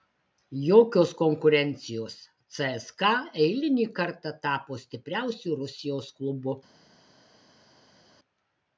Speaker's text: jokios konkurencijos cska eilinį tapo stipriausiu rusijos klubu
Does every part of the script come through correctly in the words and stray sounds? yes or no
no